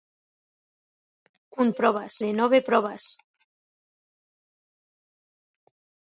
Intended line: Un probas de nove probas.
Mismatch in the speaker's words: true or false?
false